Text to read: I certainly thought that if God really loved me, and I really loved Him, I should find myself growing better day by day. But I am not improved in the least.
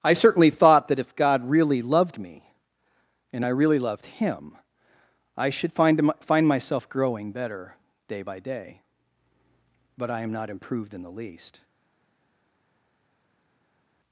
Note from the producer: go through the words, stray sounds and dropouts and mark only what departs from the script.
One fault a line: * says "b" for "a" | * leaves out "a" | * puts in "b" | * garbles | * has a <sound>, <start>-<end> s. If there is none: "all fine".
* puts in "find"